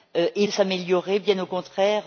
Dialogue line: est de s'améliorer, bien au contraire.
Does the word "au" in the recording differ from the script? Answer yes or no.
no